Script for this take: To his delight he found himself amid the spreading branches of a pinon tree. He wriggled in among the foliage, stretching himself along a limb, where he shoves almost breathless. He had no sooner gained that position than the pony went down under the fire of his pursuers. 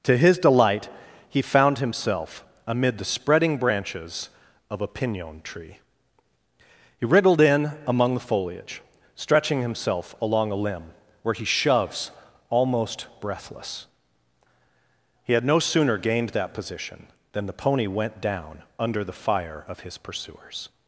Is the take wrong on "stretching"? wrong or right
right